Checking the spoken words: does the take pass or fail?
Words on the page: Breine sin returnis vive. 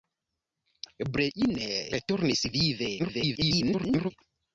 fail